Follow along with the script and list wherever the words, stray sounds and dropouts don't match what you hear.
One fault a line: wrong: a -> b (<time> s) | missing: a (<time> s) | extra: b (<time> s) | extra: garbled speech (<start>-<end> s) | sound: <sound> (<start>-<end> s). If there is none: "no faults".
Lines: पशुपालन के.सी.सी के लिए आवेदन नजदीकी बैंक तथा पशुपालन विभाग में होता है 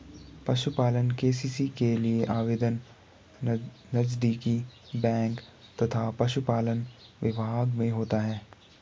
no faults